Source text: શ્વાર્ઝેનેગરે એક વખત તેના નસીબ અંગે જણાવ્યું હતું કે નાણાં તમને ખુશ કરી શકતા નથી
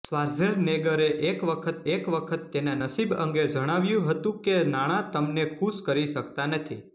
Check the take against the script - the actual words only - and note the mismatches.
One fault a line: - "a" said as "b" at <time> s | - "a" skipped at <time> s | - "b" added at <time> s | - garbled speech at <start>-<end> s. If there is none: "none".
- "એક વખત" added at 1.9 s